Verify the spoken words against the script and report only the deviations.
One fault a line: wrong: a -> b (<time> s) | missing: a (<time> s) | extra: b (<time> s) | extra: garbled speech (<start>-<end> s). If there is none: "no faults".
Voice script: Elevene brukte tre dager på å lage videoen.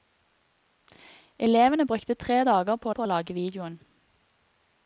extra: på (2.9 s)